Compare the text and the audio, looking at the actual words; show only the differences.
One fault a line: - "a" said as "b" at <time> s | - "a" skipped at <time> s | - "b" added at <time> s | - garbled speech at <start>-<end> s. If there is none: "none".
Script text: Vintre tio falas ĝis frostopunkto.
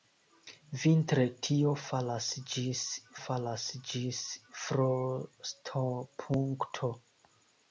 - "falas ĝis" added at 3.2 s